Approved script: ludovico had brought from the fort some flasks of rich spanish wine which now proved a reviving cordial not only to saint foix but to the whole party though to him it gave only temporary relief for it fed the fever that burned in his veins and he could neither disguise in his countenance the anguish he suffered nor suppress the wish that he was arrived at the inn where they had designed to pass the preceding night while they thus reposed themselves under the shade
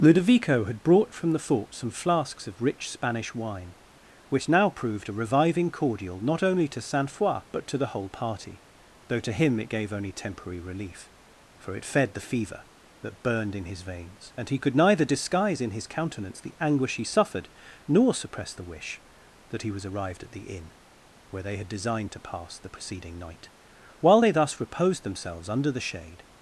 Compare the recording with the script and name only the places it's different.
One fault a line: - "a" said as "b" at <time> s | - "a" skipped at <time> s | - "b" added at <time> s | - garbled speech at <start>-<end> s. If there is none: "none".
none